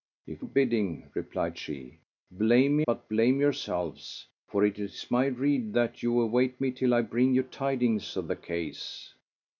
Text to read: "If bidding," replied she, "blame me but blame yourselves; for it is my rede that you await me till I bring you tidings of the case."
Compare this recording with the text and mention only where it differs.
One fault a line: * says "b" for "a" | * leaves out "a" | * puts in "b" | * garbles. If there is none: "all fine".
all fine